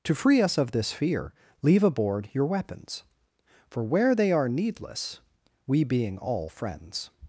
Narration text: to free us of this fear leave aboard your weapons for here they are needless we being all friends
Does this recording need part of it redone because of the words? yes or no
yes